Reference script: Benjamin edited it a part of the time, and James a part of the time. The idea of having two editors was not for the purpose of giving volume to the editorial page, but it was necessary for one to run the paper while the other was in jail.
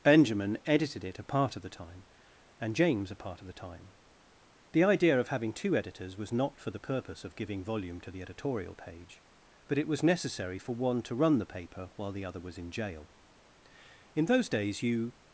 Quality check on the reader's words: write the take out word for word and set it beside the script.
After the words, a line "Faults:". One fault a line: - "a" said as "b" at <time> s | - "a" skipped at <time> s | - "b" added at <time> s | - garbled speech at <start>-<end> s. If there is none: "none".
Benjamin edited it a part of the time, and James a part of the time. The idea of having two editors was not for the purpose of giving volume to the editorial page, but it was necessary for one to run the paper while the other was in jail. In those days you
Faults:
- "In those days you" added at 14.2 s